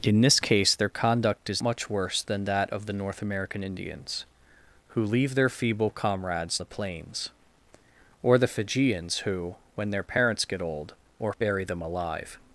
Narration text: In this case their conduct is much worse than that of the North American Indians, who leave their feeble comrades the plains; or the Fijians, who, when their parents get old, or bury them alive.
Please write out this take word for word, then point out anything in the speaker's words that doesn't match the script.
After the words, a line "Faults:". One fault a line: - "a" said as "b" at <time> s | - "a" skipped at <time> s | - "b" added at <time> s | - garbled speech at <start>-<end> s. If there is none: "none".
In this case their conduct is much worse than that of the North American Indians, who leave their feeble comrades the plains; or the Fijians, who, when their parents get old, or bury them alive.
Faults:
none